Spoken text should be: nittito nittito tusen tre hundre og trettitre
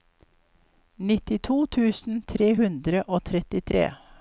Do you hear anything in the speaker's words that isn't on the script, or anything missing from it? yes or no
yes